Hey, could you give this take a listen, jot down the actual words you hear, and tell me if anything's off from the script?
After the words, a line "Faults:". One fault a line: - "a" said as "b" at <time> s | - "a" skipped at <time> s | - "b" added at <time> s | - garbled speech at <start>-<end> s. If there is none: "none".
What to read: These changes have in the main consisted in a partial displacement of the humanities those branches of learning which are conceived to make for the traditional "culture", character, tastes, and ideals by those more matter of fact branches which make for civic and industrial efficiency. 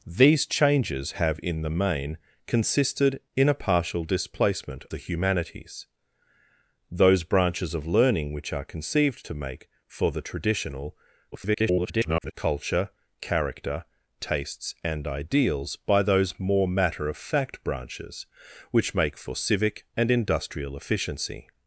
These changes have in the main consisted in a partial displacement the humanities those branches of learning which are conceived to make for the traditional [garbled] "culture", character, tastes, and ideals by those more matter of fact branches which make for civic and industrial efficiency.
Faults:
- "of" skipped at 4.8 s
- garbled speech at 11.3-12.3 s